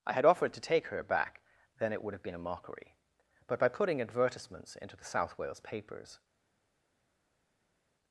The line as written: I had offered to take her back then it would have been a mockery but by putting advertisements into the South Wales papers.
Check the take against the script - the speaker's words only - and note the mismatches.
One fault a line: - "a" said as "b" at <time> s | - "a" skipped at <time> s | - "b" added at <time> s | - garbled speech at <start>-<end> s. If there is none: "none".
none